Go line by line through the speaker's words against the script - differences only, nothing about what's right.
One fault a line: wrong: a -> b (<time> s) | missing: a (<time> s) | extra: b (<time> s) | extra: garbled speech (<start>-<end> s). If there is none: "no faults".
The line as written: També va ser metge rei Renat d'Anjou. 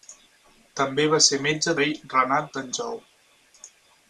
no faults